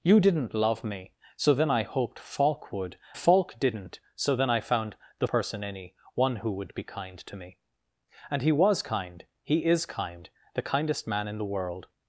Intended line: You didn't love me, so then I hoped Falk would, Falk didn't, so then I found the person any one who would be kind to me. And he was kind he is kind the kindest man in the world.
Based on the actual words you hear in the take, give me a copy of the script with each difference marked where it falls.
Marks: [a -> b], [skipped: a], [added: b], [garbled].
You didn't love me, so then I hoped Falk would, Falk didn't, so then I found the person any one who would be kind to me. And he was kind he is kind the kindest man in the world.